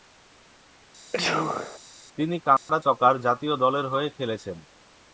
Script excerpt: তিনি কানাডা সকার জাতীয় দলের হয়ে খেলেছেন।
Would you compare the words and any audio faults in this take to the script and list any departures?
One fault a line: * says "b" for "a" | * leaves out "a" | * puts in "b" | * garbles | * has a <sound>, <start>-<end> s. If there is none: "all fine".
* has a sneeze, 1.1-1.8 s
* has a dropout, 2.6-2.7 s